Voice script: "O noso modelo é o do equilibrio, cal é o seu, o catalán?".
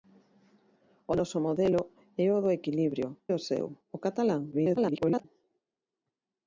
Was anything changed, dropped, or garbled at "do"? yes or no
no